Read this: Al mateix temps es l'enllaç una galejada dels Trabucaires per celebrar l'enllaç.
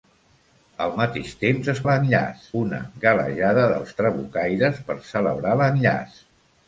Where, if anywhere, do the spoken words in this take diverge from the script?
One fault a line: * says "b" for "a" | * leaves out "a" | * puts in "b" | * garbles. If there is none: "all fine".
all fine